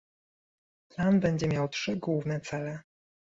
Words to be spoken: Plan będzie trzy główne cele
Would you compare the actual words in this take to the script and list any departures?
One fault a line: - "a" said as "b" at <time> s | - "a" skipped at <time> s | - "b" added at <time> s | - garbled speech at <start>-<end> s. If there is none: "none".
- "miał" added at 1.5 s